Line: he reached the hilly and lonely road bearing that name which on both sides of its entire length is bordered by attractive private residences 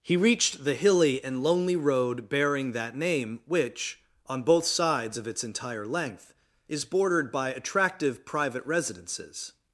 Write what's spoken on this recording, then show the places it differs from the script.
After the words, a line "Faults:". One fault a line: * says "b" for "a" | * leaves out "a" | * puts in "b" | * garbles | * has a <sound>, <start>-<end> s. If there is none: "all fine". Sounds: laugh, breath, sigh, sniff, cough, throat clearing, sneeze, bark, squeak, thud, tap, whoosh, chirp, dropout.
he reached the hilly and lonely road bearing that name which on both sides of its entire length is bordered by attractive private residences
Faults:
all fine